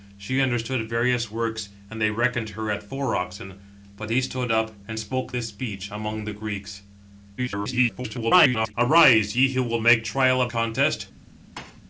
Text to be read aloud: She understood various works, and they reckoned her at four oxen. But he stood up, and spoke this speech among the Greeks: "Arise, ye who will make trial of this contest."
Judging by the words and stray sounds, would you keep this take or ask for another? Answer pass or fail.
fail